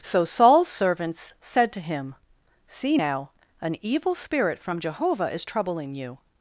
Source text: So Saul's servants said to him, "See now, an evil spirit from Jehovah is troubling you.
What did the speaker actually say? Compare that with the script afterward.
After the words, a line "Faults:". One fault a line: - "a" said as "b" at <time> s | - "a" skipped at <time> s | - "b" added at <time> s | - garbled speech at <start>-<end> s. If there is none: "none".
So Saul's servants said to him, "See now, an evil spirit from Jehovah is troubling you.
Faults:
none